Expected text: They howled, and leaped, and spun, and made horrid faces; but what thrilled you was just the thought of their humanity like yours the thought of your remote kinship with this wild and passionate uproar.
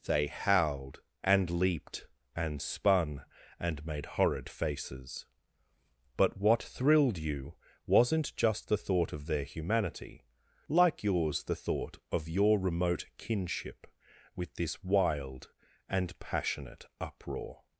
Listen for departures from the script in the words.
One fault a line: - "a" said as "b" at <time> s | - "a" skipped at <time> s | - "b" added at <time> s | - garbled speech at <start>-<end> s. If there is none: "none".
- "was" said as "wasn't" at 7.9 s